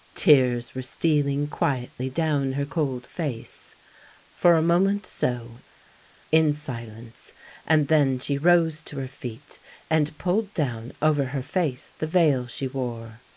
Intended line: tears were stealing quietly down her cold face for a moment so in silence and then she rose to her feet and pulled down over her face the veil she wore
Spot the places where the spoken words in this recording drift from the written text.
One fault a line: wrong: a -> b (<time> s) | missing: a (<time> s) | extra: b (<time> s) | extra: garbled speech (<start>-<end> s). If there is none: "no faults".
no faults